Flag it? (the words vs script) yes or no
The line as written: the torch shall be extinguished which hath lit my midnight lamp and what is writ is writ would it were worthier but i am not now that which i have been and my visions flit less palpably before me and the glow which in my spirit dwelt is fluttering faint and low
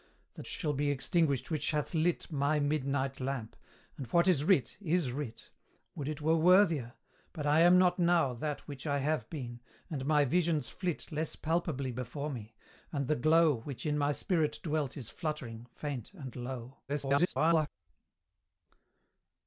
yes